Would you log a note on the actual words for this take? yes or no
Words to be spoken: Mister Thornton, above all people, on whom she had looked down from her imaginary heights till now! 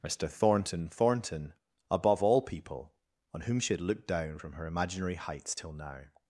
yes